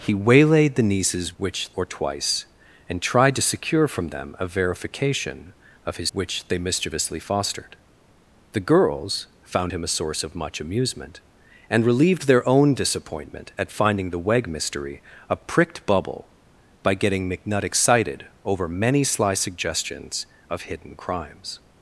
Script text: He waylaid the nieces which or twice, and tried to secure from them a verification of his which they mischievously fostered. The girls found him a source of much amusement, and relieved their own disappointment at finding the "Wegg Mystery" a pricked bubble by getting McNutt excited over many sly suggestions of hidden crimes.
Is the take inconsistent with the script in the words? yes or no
no